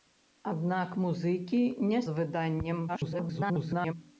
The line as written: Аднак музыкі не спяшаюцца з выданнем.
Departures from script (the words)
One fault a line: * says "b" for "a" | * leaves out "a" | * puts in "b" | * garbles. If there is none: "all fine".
* leaves out "спяшаюцца"
* garbles